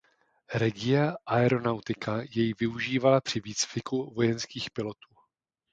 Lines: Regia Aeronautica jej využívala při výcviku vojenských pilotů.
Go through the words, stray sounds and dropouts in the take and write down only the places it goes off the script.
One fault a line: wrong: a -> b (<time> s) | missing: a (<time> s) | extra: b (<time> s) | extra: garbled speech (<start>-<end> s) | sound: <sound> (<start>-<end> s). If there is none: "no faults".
no faults